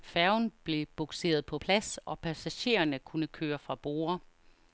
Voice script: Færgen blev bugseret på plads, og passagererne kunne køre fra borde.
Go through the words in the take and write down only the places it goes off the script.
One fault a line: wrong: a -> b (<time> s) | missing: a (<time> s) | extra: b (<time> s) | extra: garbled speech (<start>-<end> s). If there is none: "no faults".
no faults